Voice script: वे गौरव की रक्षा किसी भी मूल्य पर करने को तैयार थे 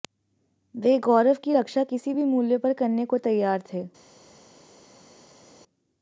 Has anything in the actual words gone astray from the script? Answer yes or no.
no